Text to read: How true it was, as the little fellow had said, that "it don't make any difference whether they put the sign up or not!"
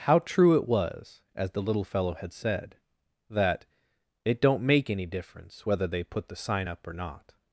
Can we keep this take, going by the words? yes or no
yes